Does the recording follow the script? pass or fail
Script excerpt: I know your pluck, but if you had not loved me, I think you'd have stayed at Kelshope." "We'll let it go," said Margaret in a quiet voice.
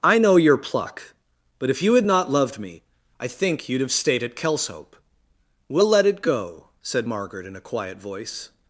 pass